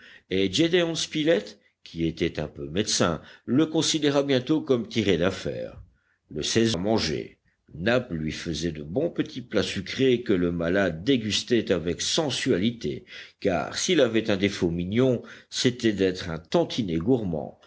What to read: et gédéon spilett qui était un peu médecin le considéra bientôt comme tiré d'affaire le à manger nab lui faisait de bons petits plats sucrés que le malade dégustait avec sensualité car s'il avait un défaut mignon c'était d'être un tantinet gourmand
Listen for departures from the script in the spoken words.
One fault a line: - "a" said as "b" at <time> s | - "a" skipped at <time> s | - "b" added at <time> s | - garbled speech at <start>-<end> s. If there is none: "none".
none